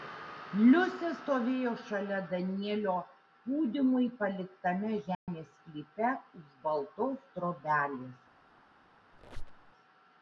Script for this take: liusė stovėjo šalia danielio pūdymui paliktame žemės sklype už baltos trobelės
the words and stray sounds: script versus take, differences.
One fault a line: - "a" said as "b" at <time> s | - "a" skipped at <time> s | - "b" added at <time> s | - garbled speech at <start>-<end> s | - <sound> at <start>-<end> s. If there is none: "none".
- dropout at 5.1-5.3 s
- squeak at 9.1-9.7 s